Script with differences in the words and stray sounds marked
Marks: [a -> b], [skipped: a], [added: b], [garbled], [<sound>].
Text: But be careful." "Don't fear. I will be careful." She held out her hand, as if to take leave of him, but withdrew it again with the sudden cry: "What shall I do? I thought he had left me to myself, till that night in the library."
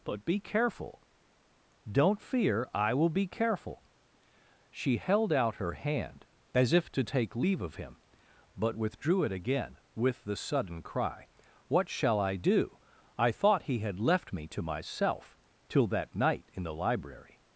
But be careful." "Don't fear. I will be careful." She held out her hand, as if to take leave of him, but withdrew it again with the sudden cry: "What shall I do? I thought he had left me to myself, till that night in the library."